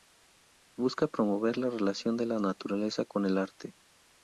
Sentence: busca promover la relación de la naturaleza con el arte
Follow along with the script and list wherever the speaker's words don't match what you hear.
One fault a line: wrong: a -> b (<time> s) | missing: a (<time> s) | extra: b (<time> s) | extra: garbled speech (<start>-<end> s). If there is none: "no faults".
no faults